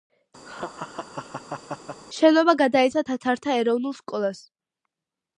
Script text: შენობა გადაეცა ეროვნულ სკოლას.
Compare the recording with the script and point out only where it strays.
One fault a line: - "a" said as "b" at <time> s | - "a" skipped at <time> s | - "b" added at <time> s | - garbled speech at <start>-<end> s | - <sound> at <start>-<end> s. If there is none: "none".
- laugh at 0.5-2.0 s
- "თათართა" added at 3.1 s